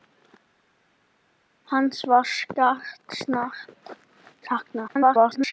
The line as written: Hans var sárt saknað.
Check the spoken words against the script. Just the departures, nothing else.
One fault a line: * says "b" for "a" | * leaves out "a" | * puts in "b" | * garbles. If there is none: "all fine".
* garbles